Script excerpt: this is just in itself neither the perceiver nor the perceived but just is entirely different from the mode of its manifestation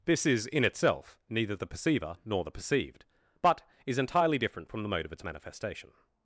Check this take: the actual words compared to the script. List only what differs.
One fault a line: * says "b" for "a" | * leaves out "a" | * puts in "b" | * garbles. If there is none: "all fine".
* leaves out "just"
* leaves out "just"